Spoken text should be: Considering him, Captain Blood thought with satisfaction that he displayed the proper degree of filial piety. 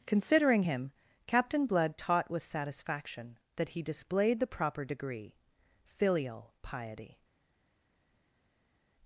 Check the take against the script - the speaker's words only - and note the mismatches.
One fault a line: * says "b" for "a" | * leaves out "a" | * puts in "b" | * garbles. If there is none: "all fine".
* says "taught" for "thought"
* leaves out "of"